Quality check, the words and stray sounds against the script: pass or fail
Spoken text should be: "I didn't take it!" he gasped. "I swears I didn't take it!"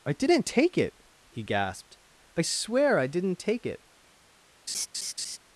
fail